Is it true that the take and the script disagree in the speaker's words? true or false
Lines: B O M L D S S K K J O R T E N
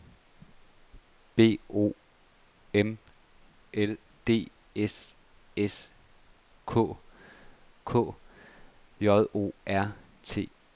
false